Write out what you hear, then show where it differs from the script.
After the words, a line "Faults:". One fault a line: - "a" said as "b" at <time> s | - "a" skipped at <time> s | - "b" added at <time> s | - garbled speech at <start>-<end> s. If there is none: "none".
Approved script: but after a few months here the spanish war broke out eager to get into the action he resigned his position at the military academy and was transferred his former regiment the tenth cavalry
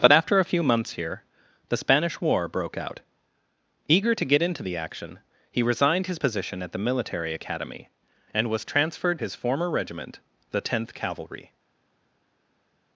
but after a few months here the spanish war broke out eager to get into the action he resigned his position at the military academy and was transferred his former regiment the tenth cavalry
Faults:
none